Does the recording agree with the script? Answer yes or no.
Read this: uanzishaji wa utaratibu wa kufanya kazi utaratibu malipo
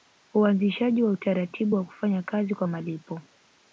no